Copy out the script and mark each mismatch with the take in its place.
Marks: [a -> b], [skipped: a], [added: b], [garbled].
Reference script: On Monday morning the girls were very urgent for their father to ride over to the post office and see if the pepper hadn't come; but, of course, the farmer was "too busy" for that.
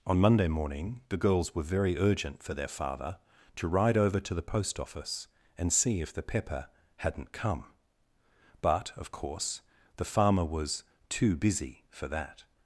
On Monday morning the girls were very urgent for their father to ride over to the post office and see if the pepper hadn't come; but, of course, the farmer was "too busy" for that.